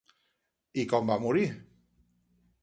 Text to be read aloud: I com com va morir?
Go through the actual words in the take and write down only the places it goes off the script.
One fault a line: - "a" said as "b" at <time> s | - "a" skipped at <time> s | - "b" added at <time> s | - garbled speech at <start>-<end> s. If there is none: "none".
- "com" skipped at 1.1 s